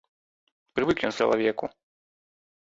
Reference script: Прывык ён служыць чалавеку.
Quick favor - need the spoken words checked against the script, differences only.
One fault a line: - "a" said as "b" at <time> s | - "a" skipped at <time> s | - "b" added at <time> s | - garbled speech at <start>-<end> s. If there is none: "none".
- "служыць" skipped at 1.2 s